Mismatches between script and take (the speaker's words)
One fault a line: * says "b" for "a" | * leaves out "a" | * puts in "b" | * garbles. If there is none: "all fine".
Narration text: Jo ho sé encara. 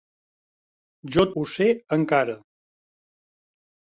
all fine